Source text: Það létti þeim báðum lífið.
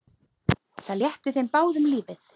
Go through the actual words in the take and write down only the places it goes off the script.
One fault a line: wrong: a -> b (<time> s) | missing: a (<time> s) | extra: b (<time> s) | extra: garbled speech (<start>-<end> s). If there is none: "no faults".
no faults